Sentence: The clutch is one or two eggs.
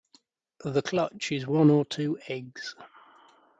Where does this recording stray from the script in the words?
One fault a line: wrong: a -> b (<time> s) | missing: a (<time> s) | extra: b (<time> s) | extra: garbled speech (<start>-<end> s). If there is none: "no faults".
no faults